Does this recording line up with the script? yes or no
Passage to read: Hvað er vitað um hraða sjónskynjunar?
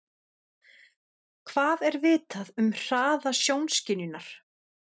yes